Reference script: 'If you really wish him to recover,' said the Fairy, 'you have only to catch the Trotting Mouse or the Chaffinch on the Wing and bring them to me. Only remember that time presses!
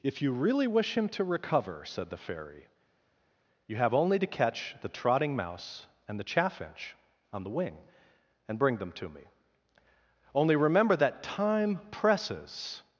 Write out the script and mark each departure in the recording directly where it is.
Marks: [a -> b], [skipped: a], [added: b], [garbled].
'If you really wish him to recover,' said the Fairy, 'you have only to catch the Trotting Mouse [or -> and] the Chaffinch on the Wing and bring them to me. Only remember that time presses!